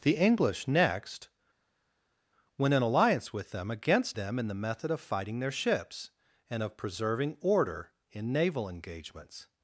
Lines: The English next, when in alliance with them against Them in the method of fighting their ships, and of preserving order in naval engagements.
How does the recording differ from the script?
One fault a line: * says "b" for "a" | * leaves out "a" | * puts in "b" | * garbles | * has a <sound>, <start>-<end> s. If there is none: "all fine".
all fine